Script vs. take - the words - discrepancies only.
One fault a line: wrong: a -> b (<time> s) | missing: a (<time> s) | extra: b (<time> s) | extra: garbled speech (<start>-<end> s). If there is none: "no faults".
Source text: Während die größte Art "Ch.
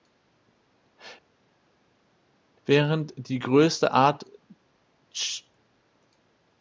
no faults